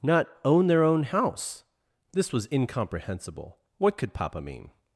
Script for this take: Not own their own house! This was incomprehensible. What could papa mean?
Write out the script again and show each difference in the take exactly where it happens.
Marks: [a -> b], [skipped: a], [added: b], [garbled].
Not own their own house! This was incomprehensible. What could papa mean?